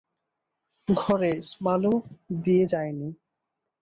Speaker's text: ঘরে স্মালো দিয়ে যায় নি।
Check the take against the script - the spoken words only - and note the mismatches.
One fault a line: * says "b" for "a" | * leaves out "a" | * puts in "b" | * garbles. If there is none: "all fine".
all fine